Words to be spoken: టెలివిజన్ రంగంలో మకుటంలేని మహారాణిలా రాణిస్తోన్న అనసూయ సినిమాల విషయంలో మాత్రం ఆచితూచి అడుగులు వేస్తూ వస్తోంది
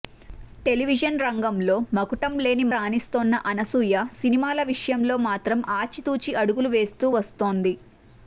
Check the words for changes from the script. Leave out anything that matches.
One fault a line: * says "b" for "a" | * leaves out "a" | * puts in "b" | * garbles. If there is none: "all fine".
* leaves out "మహారాణిలా"